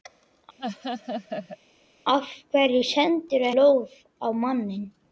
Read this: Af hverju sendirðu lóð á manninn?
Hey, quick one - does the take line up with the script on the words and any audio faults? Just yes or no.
no